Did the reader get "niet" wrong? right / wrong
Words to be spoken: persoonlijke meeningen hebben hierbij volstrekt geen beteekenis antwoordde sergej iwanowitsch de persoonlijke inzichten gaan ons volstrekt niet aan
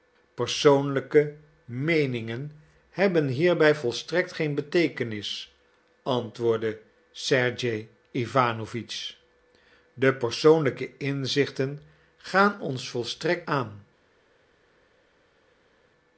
wrong